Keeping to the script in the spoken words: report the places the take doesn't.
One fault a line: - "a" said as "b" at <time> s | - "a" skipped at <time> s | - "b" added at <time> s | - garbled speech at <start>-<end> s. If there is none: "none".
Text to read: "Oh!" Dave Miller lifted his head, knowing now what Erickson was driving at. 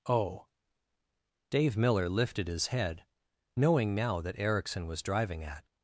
- "what" said as "that" at 4.2 s